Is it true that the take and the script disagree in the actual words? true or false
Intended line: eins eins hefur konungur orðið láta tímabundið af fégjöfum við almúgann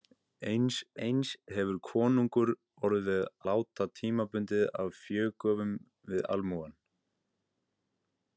false